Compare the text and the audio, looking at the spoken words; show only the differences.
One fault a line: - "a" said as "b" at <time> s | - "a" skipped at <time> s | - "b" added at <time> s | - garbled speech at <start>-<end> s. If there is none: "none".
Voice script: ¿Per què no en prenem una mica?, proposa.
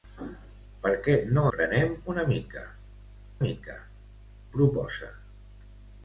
- "en" skipped at 1.4 s
- "mica" added at 3.4 s